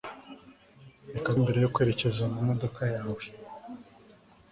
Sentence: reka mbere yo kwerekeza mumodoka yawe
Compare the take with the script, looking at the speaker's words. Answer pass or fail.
pass